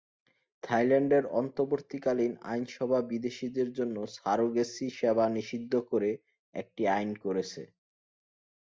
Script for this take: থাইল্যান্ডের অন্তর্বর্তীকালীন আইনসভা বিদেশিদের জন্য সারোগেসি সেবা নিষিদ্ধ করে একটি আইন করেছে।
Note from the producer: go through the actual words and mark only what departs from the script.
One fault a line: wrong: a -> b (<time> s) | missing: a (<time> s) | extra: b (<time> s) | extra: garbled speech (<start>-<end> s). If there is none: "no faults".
no faults